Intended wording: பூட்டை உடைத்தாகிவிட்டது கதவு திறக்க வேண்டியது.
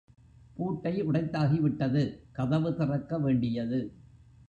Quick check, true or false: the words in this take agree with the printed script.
true